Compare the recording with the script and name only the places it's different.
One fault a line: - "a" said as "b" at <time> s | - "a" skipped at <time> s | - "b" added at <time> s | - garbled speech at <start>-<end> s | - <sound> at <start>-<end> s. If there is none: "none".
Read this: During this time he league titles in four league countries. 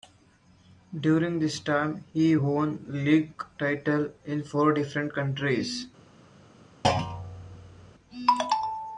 - "won" added at 2.3 s
- "league" said as "different" at 4.7 s
- thud at 6.8-7.9 s